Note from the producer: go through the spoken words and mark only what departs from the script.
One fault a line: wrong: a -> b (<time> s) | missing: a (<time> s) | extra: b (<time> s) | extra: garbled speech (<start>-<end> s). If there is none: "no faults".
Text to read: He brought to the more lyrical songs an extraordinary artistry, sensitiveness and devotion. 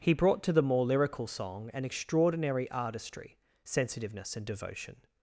wrong: songs -> song (1.2 s)